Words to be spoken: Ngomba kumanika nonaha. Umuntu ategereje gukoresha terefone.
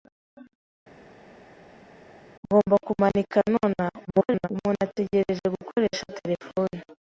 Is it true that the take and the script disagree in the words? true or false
true